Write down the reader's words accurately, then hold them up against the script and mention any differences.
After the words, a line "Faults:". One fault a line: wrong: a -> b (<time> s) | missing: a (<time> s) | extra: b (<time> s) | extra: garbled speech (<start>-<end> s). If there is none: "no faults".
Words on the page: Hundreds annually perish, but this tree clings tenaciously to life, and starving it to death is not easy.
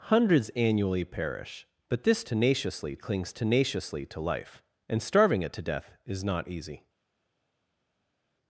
Hundreds annually perish, but this tenaciously clings tenaciously to life, and starving it to death is not easy.
Faults:
wrong: tree -> tenaciously (2.2 s)